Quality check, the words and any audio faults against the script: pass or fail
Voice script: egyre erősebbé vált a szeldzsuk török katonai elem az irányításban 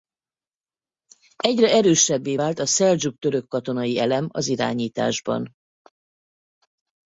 pass